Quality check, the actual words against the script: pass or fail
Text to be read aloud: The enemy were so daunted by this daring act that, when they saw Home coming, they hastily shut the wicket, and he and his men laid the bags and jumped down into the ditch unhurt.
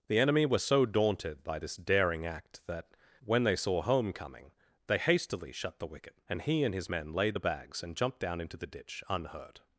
pass